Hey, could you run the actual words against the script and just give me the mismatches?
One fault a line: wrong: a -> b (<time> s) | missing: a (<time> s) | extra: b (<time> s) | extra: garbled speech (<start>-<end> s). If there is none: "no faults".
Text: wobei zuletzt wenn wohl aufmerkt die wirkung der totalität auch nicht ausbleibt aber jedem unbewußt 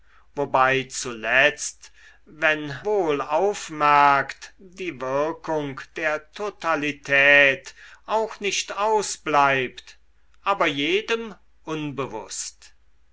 no faults